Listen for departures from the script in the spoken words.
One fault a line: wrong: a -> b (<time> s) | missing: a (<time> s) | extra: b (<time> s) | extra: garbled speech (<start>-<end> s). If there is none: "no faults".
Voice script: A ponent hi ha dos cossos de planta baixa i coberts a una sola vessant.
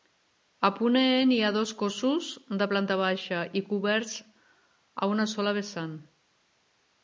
no faults